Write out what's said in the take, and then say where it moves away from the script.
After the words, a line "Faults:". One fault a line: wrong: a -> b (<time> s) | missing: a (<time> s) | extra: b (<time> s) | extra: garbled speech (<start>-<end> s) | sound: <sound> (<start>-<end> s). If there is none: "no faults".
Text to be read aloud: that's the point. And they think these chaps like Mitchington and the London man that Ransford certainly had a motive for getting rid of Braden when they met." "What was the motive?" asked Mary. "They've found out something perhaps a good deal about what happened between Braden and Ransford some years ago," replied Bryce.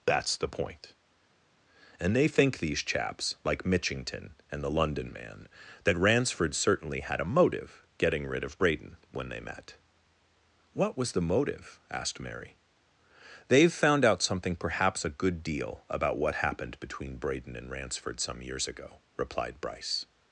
that's the point. And they think these chaps like Mitchington and the London man that Ransford certainly had a motive getting rid of Braden when they met." "What was the motive?" asked Mary. "They've found out something perhaps a good deal about what happened between Braden and Ransford some years ago," replied Bryce.
Faults:
missing: for (7.9 s)